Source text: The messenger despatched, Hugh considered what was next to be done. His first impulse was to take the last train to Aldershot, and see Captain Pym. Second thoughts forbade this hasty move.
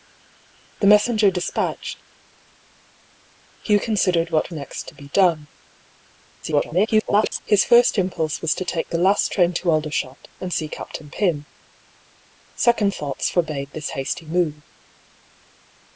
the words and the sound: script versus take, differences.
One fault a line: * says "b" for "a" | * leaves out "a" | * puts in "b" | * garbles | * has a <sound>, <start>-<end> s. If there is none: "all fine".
* leaves out "was"
* garbles